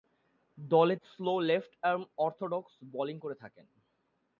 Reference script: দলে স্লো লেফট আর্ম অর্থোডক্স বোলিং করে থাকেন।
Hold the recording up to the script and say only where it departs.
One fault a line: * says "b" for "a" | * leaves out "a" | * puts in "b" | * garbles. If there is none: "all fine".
all fine